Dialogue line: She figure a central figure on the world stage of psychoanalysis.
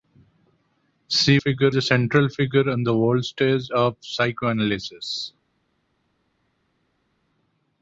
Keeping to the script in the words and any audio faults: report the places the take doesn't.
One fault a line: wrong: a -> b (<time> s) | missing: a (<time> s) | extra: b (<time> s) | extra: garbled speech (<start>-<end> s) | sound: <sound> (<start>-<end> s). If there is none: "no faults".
no faults